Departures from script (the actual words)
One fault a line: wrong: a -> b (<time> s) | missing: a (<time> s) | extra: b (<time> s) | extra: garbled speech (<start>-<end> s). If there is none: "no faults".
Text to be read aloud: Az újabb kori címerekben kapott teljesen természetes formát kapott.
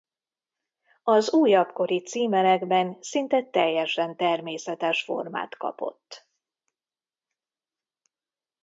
wrong: kapott -> szinte (3.0 s)